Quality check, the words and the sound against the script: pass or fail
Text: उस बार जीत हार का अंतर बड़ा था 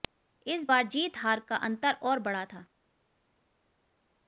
fail